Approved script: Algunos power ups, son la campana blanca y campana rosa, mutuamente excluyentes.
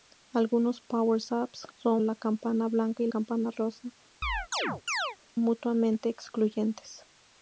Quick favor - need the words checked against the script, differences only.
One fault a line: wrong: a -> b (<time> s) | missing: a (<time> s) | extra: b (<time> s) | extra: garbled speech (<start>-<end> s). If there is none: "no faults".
no faults